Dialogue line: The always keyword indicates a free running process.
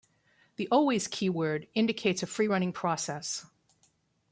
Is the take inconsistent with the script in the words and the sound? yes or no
no